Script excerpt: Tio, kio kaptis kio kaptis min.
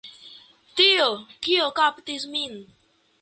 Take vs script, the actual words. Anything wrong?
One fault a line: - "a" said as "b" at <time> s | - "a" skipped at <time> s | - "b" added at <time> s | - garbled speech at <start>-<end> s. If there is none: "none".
- "kio kaptis" skipped at 2.3 s